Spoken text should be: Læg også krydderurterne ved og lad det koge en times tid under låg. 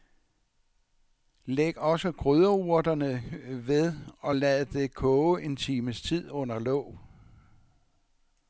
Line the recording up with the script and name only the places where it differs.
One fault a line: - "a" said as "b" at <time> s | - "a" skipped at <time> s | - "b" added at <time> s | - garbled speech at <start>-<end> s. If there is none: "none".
none